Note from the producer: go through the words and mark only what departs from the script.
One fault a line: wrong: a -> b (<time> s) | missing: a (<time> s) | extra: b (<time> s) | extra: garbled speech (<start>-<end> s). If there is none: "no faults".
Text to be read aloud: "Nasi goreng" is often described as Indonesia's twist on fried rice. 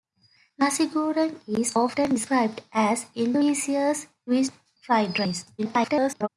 missing: on (4.5 s)
extra: garbled speech (5.6-6.3 s)